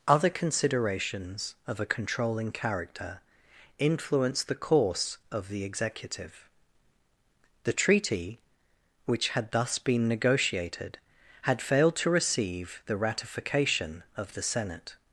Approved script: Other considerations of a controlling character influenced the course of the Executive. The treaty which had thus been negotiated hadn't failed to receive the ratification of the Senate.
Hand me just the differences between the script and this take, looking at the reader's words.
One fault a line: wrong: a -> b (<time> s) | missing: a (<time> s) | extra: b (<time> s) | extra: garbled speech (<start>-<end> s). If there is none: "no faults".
wrong: hadn't -> had (11.4 s)